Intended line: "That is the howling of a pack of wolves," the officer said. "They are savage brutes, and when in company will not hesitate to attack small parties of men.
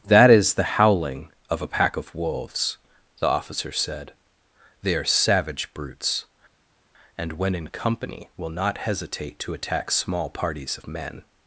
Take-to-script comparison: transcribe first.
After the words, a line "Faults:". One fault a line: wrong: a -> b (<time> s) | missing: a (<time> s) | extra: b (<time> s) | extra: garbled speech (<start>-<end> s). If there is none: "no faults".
"That is the howling of a pack of wolves," the officer said. "They are savage brutes, and when in company will not hesitate to attack small parties of men.
Faults:
no faults